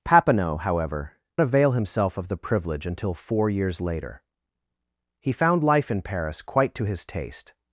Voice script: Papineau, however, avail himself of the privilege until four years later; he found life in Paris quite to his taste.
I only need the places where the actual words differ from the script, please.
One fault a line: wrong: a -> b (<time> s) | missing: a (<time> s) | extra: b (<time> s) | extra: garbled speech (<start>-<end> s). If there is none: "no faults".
no faults